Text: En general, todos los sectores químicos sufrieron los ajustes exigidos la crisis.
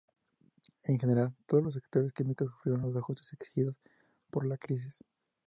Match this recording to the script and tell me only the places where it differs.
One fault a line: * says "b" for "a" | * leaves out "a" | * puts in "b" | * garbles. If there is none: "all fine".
* puts in "por"